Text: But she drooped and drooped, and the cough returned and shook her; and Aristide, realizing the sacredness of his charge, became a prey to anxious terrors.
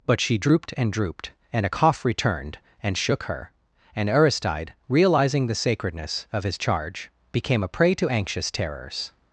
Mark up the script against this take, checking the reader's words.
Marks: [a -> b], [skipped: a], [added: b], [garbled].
But she drooped and drooped, and [the -> a] cough returned and shook her; and Aristide, realizing the sacredness of his charge, became a prey to anxious terrors.